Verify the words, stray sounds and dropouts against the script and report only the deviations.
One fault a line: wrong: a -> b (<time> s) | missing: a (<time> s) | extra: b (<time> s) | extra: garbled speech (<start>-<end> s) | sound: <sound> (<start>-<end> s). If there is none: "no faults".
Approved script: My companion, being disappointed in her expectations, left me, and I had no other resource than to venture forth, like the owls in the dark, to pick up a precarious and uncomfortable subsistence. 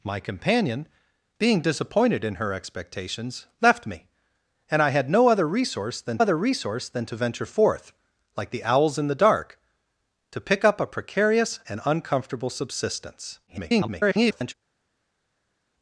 extra: other resource than (6.2 s)
extra: garbled speech (13.5-14.5 s)